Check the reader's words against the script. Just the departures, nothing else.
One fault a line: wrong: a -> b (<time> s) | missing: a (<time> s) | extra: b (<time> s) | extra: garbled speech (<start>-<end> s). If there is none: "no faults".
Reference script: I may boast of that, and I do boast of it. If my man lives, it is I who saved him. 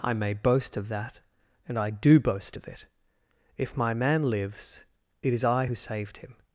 no faults